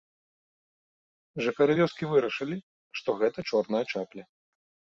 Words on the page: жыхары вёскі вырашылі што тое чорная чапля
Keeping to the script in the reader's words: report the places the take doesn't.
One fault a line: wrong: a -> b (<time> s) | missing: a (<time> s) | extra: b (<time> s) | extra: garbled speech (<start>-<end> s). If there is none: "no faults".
wrong: тое -> гэта (3.2 s)